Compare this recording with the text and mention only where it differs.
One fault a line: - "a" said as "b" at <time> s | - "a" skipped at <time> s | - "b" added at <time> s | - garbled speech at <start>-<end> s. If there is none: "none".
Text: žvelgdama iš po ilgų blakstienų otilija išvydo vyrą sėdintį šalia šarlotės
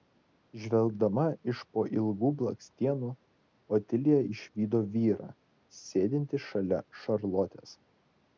none